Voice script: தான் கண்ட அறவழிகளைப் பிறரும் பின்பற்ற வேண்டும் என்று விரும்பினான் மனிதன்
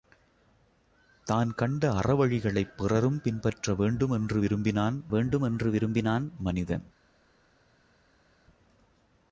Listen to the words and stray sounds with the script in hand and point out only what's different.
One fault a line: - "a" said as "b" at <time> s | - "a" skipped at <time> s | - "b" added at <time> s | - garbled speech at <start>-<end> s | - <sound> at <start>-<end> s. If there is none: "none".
- "வேண்டும் என்று விரும்பினான்" added at 5.1 s